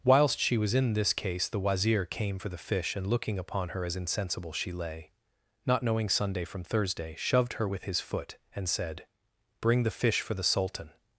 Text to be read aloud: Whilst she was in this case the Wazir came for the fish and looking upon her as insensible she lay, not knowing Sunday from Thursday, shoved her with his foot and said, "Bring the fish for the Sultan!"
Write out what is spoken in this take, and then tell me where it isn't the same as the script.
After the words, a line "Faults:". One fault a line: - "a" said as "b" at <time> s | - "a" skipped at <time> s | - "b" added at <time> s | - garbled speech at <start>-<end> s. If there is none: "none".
Whilst she was in this case the Wazir came for the fish and looking upon her as insensible she lay, not knowing Sunday from Thursday, shoved her with his foot and said, "Bring the fish for the Sultan!"
Faults:
none